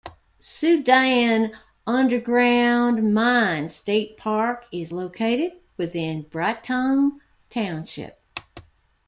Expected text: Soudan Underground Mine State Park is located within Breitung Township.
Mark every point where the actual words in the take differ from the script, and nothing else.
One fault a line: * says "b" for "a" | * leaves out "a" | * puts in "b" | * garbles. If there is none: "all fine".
all fine